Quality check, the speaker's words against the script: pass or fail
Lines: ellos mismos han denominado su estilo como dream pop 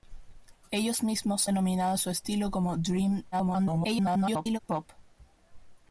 fail